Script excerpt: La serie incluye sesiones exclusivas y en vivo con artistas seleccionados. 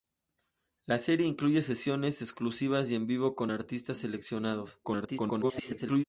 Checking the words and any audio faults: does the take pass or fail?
fail